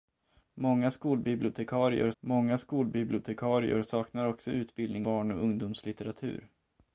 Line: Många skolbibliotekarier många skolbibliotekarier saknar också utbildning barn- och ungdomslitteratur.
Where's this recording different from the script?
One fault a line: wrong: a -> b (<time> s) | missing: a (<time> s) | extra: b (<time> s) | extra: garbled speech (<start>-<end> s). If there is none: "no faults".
no faults